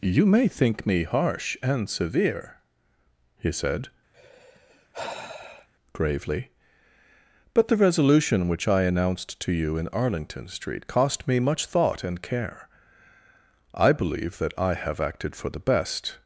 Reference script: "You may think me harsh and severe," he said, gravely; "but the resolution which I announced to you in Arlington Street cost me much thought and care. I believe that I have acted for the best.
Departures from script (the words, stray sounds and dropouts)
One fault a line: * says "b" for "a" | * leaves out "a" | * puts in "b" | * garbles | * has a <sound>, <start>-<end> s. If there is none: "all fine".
* has a sigh, 4.1-5.7 s